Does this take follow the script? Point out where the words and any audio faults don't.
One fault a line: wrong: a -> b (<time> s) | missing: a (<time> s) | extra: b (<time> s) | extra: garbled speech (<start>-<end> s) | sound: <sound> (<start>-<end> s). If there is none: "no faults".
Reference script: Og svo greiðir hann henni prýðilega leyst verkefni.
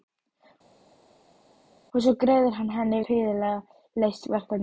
no faults